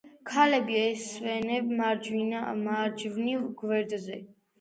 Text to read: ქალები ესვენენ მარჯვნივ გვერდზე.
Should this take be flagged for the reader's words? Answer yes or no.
no